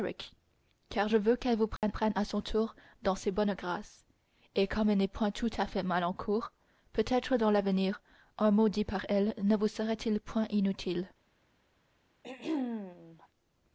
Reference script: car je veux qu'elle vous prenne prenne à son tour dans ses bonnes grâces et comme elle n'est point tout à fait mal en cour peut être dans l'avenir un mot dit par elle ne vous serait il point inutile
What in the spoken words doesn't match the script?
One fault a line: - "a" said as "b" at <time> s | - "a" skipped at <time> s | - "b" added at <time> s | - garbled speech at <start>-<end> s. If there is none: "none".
none